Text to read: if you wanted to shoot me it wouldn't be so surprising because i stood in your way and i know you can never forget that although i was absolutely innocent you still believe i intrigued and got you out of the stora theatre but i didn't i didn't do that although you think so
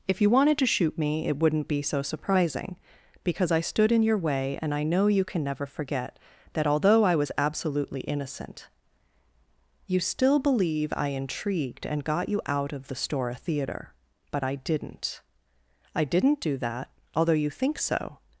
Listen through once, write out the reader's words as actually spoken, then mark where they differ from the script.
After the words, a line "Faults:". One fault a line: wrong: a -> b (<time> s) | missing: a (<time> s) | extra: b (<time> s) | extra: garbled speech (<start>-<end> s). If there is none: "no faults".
if you wanted to shoot me it wouldn't be so surprising because i stood in your way and i know you can never forget that although i was absolutely innocent you still believe i intrigued and got you out of the stora theatre but i didn't i didn't do that although you think so
Faults:
no faults